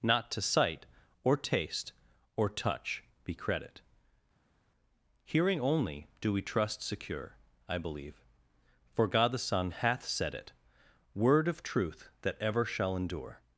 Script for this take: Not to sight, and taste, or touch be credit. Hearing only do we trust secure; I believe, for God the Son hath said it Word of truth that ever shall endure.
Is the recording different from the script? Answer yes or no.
yes